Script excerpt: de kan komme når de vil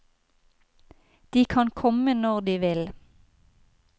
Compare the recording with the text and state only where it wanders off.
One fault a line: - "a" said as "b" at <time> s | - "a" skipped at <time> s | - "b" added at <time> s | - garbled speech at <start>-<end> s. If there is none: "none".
none